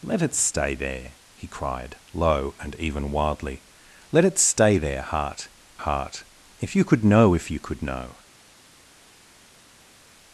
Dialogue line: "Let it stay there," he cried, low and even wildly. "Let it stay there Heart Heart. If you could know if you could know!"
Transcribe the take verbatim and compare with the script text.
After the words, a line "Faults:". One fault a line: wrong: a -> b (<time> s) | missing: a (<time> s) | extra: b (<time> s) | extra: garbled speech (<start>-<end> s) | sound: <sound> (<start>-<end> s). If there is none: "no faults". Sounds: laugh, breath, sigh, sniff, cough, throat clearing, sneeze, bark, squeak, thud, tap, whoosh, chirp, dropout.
"Let it stay there," he cried, low and even wildly. "Let it stay there Heart Heart. If you could know if you could know!"
Faults:
no faults